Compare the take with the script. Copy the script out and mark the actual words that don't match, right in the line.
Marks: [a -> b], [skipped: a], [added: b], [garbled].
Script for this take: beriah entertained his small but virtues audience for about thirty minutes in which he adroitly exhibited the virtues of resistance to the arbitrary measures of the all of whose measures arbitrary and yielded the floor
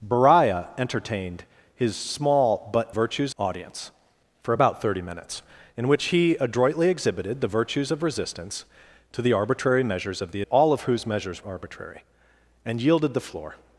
beriah entertained his small but virtues audience for about thirty minutes in which he adroitly exhibited the virtues of resistance to the arbitrary measures of the all of whose measures arbitrary and yielded the floor